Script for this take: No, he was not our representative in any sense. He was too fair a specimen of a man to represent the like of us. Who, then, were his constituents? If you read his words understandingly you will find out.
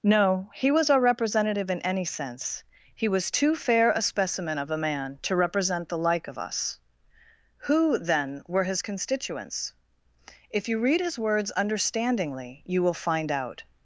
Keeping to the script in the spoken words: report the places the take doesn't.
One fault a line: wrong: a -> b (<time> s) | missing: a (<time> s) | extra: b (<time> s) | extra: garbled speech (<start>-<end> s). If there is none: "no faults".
missing: not (0.9 s)